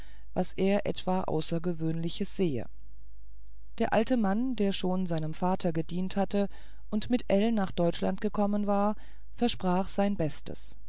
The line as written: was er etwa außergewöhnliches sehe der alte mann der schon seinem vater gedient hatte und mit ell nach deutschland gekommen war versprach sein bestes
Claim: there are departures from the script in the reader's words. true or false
false